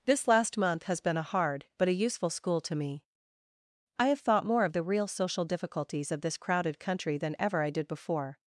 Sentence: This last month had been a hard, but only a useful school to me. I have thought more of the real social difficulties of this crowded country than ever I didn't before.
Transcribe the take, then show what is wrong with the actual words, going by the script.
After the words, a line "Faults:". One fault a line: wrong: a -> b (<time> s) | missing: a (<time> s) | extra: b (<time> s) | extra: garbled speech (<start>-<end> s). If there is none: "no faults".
This last month has been a hard, but a useful school to me. I have thought more of the real social difficulties of this crowded country than ever I did before.
Faults:
wrong: had -> has (0.8 s)
missing: only (1.9 s)
wrong: didn't -> did (7.7 s)